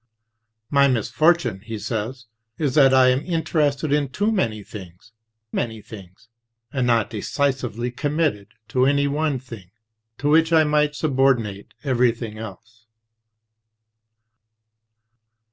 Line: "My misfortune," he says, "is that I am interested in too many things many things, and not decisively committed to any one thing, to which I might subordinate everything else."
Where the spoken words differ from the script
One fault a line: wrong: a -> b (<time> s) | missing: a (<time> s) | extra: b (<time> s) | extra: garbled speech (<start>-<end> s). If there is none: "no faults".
no faults